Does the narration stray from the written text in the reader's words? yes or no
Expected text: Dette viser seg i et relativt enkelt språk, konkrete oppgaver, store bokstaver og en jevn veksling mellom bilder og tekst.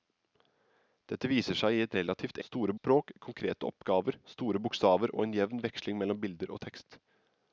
yes